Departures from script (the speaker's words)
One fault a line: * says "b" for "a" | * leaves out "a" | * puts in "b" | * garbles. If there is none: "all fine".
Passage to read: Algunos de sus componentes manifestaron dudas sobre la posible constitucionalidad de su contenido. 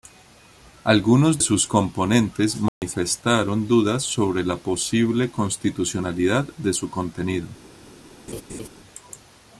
* leaves out "de"